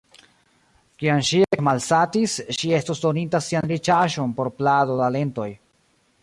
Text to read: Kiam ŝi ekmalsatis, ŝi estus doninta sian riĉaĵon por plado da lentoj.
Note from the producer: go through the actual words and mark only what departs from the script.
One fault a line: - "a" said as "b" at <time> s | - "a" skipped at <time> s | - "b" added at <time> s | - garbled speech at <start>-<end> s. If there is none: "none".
none